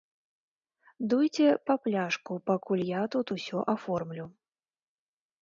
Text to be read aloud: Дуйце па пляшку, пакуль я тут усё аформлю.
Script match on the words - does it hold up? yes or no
yes